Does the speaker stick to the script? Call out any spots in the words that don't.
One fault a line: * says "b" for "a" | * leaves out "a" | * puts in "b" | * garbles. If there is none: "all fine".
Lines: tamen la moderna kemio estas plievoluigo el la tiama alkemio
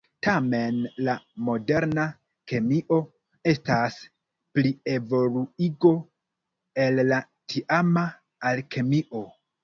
all fine